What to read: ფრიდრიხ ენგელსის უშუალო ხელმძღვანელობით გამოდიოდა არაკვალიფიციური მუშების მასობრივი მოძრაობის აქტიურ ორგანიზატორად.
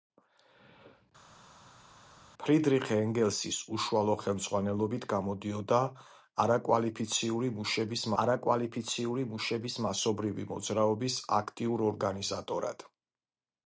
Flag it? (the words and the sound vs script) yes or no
yes